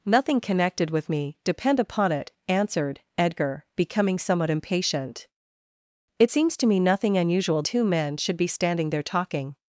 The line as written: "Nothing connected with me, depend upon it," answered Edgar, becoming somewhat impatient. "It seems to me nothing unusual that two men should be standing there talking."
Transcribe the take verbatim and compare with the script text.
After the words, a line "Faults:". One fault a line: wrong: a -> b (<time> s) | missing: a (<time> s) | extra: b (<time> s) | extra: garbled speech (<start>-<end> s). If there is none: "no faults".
"Nothing connected with me, depend upon it," answered Edgar, becoming somewhat impatient. "It seems to me nothing unusual two men should be standing there talking."
Faults:
missing: that (7.6 s)